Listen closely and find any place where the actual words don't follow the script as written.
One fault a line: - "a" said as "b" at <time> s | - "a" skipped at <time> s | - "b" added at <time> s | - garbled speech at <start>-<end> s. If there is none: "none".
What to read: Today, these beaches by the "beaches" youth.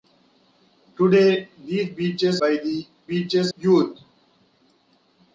none